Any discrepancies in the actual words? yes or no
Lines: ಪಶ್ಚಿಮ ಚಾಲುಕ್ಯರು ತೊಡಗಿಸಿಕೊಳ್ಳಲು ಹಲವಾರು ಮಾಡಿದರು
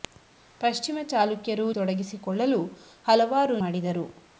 no